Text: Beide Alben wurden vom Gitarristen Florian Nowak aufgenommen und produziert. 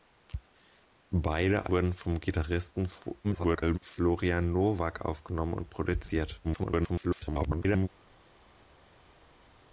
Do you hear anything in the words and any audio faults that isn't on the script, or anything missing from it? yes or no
yes